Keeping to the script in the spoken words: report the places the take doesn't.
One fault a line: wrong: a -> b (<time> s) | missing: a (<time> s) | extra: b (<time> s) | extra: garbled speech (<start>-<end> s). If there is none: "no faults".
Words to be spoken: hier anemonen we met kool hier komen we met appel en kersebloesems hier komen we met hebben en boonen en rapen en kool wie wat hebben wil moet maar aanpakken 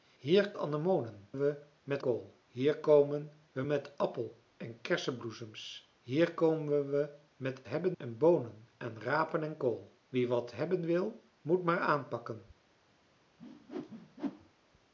no faults